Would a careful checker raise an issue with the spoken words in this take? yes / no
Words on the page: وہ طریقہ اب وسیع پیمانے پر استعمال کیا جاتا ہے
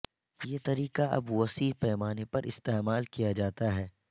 yes